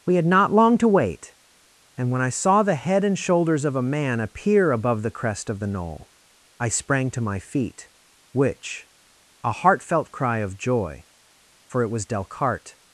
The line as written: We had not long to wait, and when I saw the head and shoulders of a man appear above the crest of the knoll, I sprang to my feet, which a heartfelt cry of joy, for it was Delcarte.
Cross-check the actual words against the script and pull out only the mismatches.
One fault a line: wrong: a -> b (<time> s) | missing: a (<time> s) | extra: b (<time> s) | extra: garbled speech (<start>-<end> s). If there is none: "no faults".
no faults